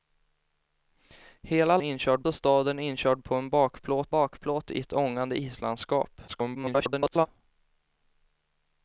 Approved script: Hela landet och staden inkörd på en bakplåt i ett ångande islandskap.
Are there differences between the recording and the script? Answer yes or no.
yes